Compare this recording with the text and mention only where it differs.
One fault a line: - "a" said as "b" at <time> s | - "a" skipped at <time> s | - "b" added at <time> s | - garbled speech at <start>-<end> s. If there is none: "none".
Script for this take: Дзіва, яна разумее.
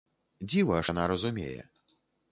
none